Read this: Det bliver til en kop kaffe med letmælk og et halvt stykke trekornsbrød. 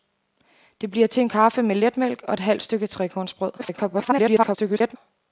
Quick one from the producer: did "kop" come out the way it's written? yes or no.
no